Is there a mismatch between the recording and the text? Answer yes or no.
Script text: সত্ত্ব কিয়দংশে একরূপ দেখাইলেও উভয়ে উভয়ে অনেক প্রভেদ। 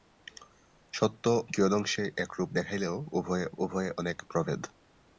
no